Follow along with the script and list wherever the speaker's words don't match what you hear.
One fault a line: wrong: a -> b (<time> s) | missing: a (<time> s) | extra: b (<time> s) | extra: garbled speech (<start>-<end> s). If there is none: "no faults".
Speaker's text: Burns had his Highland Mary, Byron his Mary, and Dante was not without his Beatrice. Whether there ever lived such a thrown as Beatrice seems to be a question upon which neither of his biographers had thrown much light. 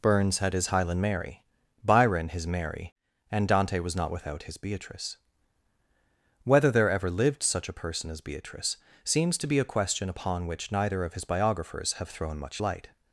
wrong: thrown -> person (7.7 s)
wrong: had -> have (11.9 s)